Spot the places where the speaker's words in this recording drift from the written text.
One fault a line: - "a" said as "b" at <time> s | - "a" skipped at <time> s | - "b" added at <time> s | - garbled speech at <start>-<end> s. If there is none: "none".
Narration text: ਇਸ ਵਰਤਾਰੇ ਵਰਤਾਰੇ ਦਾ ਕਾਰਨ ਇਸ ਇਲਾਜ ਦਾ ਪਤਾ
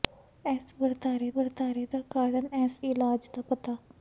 none